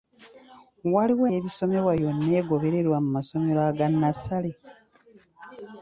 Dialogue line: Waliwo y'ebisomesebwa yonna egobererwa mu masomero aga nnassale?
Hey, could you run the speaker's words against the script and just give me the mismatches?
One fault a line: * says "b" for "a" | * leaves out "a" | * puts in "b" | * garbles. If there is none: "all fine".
all fine